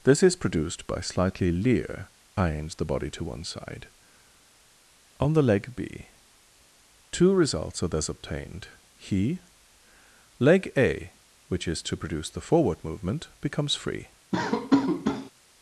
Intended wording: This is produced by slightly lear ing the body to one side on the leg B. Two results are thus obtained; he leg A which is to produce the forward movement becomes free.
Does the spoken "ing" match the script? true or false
false